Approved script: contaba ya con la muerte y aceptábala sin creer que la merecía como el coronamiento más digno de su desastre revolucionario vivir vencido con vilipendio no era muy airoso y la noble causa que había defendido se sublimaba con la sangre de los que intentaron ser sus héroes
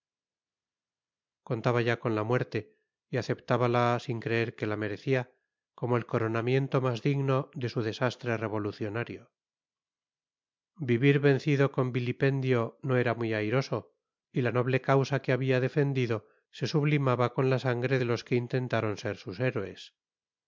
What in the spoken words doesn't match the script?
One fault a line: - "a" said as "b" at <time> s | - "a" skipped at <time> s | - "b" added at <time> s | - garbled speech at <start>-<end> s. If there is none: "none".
none